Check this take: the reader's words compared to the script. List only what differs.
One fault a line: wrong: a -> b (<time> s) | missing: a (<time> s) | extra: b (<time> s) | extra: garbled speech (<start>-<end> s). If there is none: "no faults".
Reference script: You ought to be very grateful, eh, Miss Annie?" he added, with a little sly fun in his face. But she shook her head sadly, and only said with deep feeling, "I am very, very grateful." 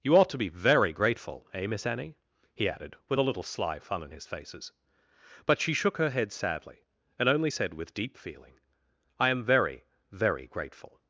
wrong: face -> faces (4.3 s)